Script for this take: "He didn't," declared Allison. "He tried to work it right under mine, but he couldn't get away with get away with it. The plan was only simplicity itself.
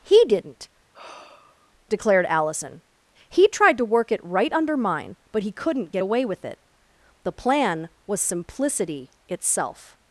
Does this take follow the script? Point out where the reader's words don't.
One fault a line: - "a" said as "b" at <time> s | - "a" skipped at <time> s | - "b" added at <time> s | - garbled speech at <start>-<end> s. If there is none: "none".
- "get away with" skipped at 6.4 s
- "only" skipped at 8.2 s